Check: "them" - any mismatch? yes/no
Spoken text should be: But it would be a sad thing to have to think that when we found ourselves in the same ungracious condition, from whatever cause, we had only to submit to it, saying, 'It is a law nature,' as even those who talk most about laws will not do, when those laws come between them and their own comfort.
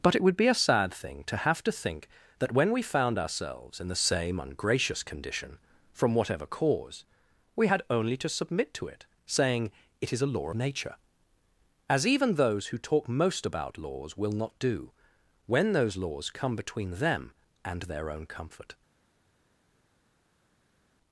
no